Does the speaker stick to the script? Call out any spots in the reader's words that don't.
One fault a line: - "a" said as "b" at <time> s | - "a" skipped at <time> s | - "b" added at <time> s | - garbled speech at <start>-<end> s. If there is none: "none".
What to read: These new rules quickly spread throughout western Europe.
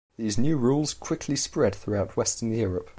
none